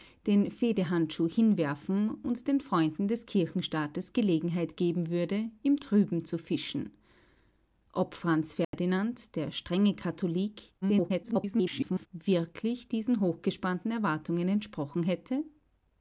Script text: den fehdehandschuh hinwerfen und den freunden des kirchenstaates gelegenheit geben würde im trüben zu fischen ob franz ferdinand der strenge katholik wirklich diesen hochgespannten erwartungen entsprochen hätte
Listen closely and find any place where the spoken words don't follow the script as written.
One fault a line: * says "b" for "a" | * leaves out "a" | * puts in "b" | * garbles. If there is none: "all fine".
* garbles